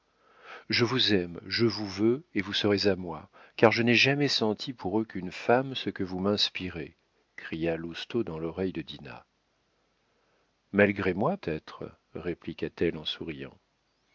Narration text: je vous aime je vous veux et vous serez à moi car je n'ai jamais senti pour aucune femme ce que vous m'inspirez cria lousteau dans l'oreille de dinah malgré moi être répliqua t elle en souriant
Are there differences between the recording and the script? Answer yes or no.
no